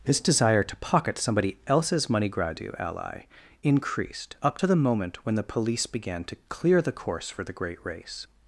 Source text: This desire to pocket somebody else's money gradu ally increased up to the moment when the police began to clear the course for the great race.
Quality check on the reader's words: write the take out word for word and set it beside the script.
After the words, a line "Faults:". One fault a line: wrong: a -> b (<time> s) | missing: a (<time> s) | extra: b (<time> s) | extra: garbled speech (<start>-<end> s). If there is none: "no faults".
This desire to pocket somebody else's money gradu ally increased up to the moment when the police began to clear the course for the great race.
Faults:
no faults